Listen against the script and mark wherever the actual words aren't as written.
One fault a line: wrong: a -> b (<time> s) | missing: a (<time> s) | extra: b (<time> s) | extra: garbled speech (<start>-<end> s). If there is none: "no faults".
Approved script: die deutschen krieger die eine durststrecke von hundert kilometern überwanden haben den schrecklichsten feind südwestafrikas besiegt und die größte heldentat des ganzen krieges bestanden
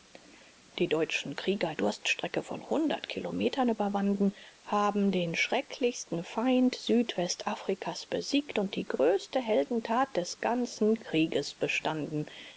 missing: die eine (1.7 s)